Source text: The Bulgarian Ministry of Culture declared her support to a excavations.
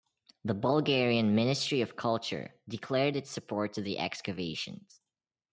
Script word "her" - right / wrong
wrong